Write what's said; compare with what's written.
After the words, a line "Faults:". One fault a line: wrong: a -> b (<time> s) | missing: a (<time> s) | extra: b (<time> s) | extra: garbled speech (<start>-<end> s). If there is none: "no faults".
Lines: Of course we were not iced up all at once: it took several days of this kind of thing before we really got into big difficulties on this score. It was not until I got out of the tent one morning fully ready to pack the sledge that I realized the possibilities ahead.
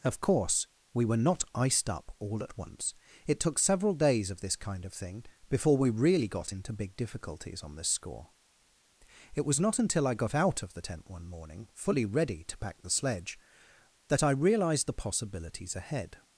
Of course we were not iced up all at once: it took several days of this kind of thing before we really got into big difficulties on this score. It was not until I got out of the tent one morning fully ready to pack the sledge that I realized the possibilities ahead.
Faults:
no faults